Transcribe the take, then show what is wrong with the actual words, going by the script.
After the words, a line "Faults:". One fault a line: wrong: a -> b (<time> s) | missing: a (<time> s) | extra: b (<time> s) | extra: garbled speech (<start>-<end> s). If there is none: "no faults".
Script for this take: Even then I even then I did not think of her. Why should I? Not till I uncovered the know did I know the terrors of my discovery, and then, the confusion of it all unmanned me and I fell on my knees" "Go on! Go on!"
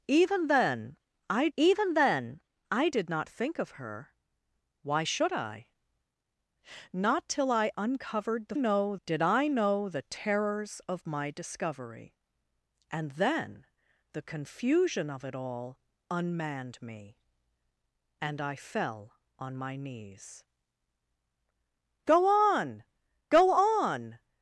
Even then I even then I did not think of her. Why should I? Not till I uncovered the know did I know the terrors of my discovery, and then, the confusion of it all unmanned me and I fell on my knees" "Go on! Go on!"
Faults:
no faults